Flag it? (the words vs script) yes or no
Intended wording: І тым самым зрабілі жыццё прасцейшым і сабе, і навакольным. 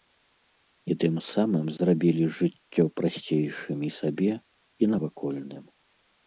no